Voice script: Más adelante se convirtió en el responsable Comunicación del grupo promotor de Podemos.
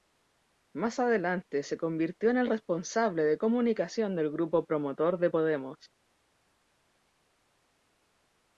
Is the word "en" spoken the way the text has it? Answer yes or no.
yes